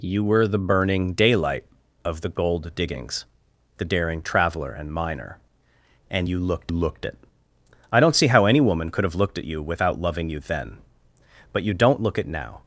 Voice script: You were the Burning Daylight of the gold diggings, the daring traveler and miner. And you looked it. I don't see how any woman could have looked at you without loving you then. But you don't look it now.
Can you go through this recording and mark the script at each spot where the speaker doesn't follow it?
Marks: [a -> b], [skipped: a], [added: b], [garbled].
You were the Burning Daylight of the gold diggings, the daring traveler and miner. And you looked [added: looked] it. I don't see how any woman could have looked at you without loving you then. But you don't look it now.